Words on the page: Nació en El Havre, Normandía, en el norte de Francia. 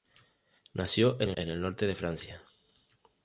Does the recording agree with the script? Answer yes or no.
no